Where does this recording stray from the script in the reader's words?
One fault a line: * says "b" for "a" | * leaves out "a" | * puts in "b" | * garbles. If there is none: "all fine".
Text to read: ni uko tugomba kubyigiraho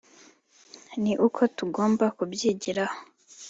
all fine